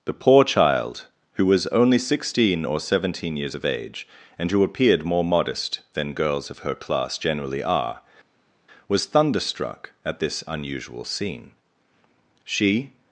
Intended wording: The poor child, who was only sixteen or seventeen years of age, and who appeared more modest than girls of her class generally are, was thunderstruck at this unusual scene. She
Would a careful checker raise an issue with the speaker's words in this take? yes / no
no